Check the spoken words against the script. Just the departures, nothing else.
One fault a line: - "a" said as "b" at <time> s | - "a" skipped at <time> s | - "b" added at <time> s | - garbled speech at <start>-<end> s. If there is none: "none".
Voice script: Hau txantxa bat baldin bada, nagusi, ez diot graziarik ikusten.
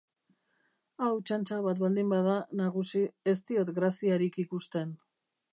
none